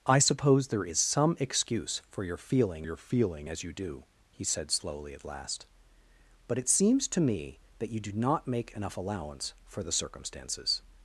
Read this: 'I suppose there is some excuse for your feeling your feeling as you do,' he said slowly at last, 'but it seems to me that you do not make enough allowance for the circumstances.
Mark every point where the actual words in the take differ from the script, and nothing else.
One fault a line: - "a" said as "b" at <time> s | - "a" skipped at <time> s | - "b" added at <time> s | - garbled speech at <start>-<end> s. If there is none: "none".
none